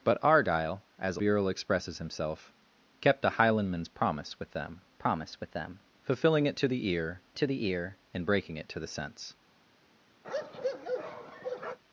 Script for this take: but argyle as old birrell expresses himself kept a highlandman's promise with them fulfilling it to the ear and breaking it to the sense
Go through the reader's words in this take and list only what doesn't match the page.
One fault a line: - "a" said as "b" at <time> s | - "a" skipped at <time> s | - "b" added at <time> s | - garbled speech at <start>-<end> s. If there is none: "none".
- "old" skipped at 1.2 s
- "promise with them" added at 4.9 s
- "to the ear" added at 7.4 s